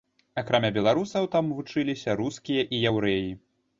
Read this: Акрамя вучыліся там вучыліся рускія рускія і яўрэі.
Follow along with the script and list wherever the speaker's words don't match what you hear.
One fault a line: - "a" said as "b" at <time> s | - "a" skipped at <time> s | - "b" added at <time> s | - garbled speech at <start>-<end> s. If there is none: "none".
- "вучыліся" said as "беларусаў" at 0.8 s
- "рускія" skipped at 2.7 s